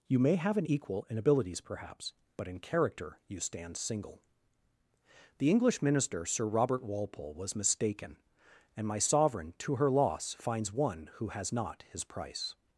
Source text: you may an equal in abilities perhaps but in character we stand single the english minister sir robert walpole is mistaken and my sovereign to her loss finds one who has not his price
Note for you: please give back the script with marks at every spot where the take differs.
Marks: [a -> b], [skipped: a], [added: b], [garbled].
you may [added: have] an equal in abilities perhaps but in character [we -> you] stand single the english minister sir robert walpole [is -> was] mistaken and my sovereign to her loss finds one who has not his price